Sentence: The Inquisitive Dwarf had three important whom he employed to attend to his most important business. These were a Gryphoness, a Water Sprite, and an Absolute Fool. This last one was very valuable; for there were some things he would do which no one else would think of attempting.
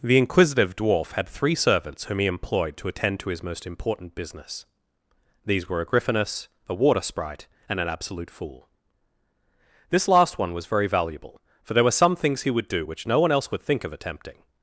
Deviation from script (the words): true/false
true